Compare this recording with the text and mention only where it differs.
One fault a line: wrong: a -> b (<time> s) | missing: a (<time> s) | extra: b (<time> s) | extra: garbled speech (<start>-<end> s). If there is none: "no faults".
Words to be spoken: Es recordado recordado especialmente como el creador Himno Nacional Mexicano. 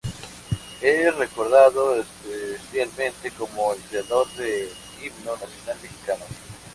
missing: recordado (1.9 s)
extra: del (4.3 s)